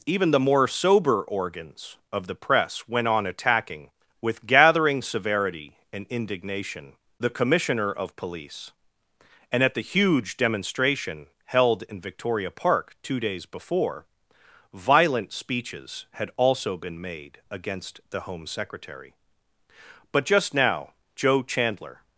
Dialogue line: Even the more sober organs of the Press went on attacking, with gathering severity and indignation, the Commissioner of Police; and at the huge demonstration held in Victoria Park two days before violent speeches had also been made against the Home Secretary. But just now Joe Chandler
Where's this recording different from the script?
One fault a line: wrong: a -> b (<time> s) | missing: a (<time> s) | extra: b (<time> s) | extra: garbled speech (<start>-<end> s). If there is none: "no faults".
no faults